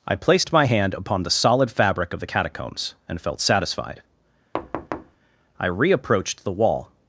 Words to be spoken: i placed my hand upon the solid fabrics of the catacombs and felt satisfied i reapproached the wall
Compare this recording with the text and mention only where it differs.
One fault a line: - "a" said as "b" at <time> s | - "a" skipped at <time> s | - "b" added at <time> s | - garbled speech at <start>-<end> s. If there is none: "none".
- "fabrics" said as "fabric" at 1.7 s